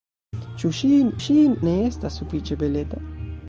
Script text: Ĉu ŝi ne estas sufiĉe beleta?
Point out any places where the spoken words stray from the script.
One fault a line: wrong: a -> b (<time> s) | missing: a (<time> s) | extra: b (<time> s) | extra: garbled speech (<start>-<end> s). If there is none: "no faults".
extra: ŝi (1.2 s)